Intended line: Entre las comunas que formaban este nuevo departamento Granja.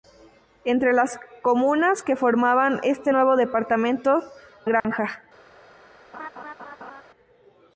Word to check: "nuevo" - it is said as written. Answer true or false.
true